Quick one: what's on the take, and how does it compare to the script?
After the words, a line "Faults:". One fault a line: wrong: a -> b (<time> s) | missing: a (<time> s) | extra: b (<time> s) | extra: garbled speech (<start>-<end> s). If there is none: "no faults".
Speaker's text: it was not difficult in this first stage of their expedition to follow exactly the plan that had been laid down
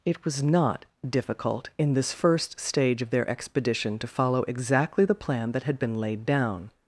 it was not difficult in this first stage of their expedition to follow exactly the plan that had been laid down
Faults:
no faults